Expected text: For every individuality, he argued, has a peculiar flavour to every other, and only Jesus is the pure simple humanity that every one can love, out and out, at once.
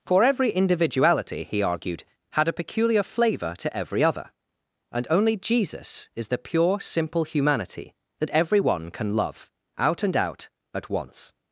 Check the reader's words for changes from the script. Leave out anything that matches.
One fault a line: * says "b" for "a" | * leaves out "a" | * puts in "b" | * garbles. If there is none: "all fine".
* says "had" for "has"